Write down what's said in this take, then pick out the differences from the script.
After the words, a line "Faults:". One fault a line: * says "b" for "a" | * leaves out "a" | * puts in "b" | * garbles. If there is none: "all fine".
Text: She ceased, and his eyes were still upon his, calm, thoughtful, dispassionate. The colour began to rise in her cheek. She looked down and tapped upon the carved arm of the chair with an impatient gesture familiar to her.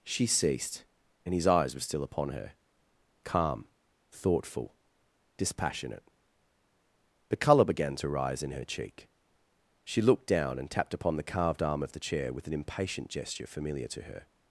She ceased, and his eyes were still upon her, calm, thoughtful, dispassionate. The colour began to rise in her cheek. She looked down and tapped upon the carved arm of the chair with an impatient gesture familiar to her.
Faults:
* says "her" for "his"